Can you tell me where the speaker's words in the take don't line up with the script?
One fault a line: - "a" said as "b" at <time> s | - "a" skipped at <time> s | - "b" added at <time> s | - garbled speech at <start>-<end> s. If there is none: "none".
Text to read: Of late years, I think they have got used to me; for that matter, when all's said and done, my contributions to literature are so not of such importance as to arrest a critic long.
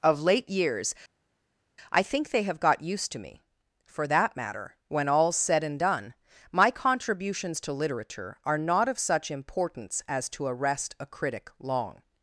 - "so" skipped at 8.6 s